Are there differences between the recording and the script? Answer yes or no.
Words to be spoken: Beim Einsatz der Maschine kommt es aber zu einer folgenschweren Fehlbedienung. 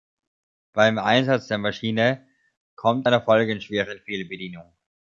yes